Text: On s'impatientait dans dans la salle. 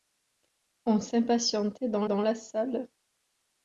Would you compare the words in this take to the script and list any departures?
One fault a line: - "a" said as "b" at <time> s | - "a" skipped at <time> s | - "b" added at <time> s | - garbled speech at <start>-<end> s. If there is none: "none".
none